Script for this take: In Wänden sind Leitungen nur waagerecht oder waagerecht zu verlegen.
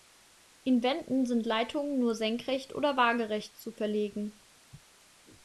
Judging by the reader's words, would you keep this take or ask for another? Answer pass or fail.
fail